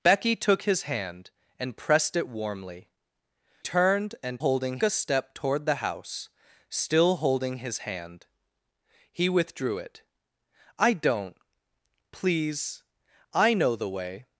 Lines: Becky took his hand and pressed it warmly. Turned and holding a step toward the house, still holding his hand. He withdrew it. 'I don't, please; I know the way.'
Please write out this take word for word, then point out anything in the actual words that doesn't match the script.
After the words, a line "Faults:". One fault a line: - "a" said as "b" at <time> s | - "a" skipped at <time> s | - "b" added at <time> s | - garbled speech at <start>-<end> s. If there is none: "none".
Becky took his hand and pressed it warmly. Turned and holding a step toward the house, still holding his hand. He withdrew it. 'I don't, please; I know the way.'
Faults:
none